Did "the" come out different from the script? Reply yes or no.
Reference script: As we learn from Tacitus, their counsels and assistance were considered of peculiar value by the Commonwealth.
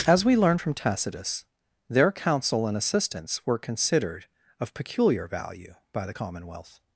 no